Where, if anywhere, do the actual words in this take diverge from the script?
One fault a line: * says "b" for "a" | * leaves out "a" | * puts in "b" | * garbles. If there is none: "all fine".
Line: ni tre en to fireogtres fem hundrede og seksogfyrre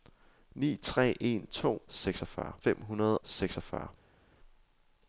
* says "seksogfyrre" for "fireogtres"
* leaves out "og"